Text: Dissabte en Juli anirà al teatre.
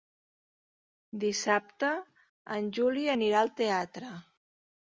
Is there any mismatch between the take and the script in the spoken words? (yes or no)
no